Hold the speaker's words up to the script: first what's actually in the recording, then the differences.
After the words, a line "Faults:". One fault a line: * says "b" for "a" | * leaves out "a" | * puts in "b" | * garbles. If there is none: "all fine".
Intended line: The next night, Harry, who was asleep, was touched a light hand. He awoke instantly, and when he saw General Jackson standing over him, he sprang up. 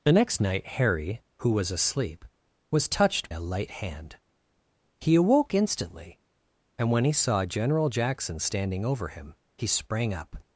The next night, Harry, who was asleep, was touched a light hand. He awoke instantly, and when he saw General Jackson standing over him, he sprang up.
Faults:
all fine